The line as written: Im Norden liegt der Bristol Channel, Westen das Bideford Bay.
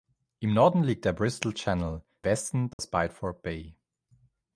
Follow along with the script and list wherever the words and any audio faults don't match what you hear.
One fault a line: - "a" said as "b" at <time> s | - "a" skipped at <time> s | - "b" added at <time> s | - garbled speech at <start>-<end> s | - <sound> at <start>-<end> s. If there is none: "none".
- dropout at 2.7-2.8 s